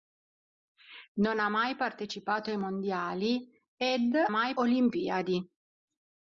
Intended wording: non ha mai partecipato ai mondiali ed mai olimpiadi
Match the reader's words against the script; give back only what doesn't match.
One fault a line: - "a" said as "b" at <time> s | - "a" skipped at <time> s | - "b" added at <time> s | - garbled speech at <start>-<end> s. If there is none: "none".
none